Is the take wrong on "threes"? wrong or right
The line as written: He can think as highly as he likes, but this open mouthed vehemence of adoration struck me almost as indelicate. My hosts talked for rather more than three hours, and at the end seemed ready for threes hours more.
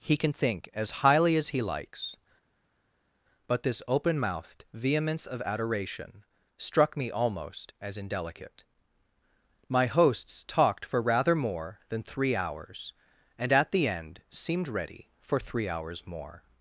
wrong